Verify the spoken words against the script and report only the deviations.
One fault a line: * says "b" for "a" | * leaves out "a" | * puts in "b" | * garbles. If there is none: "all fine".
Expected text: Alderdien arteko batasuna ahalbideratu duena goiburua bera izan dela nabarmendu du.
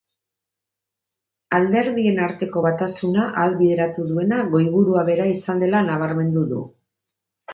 all fine